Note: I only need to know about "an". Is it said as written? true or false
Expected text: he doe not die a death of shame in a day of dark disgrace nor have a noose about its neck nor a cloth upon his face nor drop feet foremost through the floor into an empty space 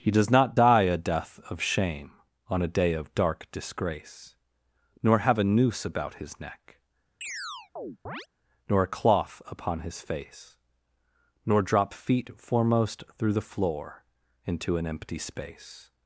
true